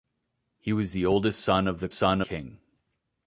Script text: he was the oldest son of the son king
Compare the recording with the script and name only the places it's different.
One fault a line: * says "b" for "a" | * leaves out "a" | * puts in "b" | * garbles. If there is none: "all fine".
all fine